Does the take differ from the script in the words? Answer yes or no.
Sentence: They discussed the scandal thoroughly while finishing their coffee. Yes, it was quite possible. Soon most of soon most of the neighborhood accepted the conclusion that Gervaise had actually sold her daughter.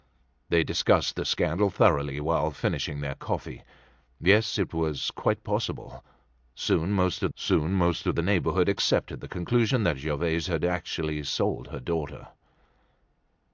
no